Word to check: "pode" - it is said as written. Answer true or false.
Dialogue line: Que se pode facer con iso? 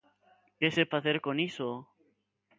false